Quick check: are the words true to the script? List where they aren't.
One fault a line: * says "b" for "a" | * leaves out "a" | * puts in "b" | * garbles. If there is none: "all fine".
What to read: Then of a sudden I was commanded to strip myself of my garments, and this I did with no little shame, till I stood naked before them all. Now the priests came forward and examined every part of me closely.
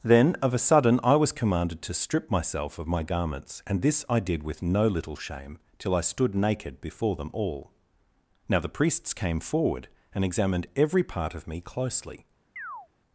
all fine